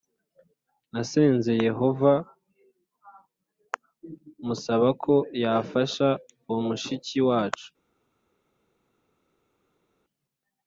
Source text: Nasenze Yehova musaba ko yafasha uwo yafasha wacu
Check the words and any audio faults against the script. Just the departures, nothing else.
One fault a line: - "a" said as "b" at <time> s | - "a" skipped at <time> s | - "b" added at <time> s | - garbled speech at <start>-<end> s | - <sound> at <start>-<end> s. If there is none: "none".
- "yafasha" said as "mushiki" at 6.7 s